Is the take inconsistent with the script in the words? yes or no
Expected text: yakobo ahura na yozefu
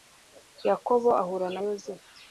no